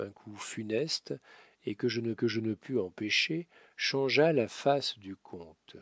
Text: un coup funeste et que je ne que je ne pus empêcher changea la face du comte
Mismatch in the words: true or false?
false